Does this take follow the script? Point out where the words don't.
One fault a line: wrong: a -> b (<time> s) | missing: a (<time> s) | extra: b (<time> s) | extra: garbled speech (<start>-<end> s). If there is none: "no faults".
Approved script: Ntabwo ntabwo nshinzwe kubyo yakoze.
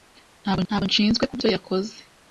no faults